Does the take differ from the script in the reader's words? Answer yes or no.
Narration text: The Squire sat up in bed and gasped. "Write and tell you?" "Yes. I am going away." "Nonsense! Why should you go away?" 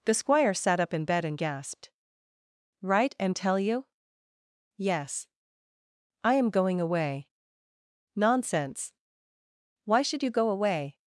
no